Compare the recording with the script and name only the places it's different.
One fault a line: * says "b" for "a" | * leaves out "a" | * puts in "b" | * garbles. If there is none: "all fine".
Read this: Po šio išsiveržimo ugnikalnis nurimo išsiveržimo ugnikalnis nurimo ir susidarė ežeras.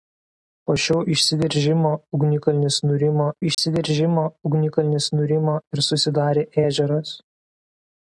all fine